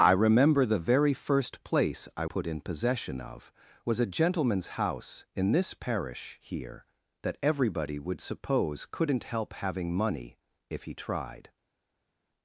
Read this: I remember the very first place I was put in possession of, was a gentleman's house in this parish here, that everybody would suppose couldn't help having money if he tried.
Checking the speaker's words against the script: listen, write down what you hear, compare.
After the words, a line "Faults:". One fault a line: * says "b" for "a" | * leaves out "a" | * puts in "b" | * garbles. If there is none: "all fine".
I remember the very first place I put in possession of, was a gentleman's house in this parish here, that everybody would suppose couldn't help having money if he tried.
Faults:
* leaves out "was"